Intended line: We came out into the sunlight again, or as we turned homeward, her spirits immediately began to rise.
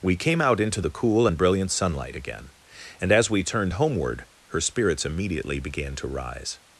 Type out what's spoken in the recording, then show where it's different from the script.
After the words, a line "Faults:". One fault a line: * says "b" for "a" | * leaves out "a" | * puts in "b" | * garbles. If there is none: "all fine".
We came out into the cool and brilliant sunlight again, and as we turned homeward, her spirits immediately began to rise.
Faults:
* puts in "cool and brilliant"
* says "and" for "or"